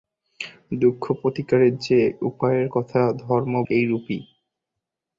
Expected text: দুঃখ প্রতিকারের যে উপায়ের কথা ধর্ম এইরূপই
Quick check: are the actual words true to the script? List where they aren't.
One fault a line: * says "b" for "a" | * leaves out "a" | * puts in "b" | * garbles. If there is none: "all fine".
all fine